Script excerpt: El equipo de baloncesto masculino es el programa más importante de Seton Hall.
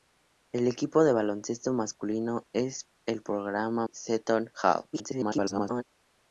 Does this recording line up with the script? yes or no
no